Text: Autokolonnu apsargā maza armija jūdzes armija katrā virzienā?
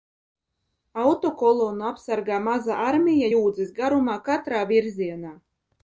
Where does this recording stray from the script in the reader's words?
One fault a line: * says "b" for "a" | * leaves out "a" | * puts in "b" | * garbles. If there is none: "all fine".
* says "garumā" for "armija"